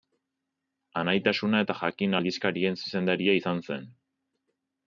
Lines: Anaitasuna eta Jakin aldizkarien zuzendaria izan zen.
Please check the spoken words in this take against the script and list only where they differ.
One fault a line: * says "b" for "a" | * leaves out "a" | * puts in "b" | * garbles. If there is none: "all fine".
all fine